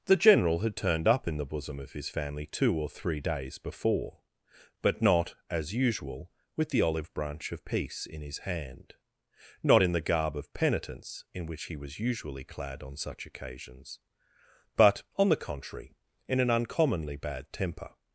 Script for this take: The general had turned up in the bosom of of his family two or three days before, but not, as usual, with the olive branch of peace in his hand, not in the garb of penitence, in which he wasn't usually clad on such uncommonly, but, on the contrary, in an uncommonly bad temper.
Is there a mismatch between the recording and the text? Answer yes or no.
yes